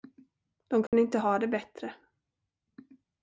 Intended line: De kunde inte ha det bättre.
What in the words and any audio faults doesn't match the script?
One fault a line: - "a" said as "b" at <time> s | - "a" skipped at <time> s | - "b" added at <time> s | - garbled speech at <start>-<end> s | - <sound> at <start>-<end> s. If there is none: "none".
- dropout at 0.9-0.9 s